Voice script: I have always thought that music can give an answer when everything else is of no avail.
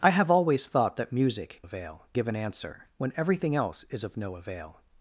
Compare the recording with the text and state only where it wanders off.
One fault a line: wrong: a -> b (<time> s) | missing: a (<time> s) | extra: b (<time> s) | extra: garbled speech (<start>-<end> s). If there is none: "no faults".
wrong: can -> avail (1.6 s)